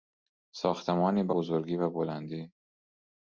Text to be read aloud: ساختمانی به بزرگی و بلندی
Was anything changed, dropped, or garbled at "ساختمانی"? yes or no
no